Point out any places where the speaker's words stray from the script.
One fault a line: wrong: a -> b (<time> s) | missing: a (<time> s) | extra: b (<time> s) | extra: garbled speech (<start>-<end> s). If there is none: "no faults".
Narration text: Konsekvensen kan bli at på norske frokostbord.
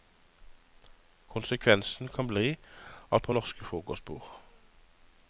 no faults